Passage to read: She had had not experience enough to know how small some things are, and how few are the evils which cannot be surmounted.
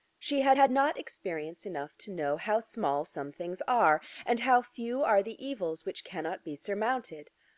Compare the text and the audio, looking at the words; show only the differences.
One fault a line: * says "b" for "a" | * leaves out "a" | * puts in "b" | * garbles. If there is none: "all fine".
all fine